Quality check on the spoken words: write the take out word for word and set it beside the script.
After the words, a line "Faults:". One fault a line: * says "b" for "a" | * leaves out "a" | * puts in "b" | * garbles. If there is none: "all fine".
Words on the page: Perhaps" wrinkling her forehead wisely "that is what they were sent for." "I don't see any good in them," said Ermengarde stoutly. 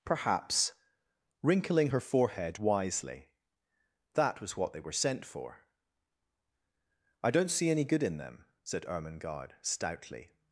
Perhaps" wrinkling her forehead wisely "that was what they were sent for." "I don't see any good in them," said Ermengarde stoutly.
Faults:
* says "was" for "is"